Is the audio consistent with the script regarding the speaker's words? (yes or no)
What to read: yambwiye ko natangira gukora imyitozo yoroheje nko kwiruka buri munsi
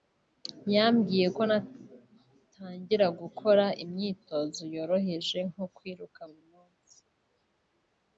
yes